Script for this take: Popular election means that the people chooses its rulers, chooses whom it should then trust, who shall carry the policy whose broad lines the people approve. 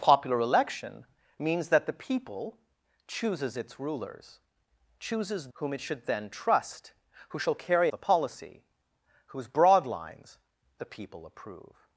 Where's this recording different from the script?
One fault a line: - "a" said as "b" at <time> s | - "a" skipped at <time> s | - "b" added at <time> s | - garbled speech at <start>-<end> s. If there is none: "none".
none